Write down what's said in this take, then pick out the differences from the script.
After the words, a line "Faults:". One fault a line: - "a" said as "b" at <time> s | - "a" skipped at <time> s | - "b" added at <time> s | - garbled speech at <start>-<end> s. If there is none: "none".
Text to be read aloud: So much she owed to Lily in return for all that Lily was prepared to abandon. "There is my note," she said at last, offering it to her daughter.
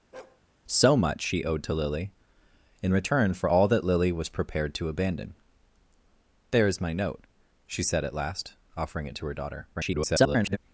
So much she owed to Lily in return for all that Lily was prepared to abandon. "There is my note," she said at last, offering it to her daughter. [garbled]
Faults:
- garbled speech at 9.7-10.6 s